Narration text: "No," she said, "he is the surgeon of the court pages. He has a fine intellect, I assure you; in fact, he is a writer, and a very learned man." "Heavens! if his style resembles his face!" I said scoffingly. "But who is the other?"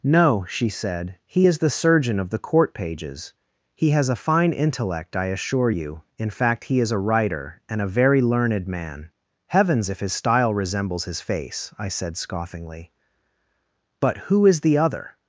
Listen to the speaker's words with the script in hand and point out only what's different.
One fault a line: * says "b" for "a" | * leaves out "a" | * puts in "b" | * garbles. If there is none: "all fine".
all fine